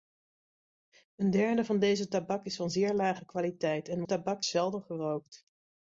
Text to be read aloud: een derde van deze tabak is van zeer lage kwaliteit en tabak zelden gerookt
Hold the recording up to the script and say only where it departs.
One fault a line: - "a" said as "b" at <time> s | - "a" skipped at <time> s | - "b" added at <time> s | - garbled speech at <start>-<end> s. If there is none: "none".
none